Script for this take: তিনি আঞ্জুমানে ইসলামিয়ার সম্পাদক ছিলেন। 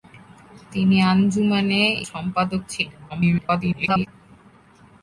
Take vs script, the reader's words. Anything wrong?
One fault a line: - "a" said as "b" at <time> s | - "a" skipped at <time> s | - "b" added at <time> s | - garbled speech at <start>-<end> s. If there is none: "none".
- "ইসলামিয়ার" skipped at 1.8 s
- garbled speech at 3.1-4.1 s